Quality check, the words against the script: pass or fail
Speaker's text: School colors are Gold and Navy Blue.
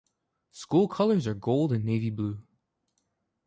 pass